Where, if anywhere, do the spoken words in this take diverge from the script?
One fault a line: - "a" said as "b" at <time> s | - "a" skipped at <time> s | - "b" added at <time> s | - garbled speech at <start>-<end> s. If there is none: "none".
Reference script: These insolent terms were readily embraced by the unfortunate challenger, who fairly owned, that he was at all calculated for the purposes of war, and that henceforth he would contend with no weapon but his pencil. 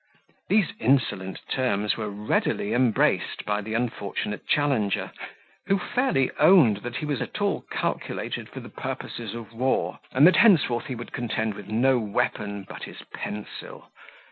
none